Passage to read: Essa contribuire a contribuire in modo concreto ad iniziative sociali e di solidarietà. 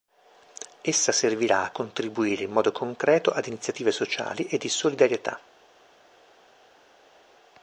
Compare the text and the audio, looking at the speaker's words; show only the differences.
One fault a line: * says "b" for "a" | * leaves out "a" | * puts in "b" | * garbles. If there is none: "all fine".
* says "servirà" for "contribuire"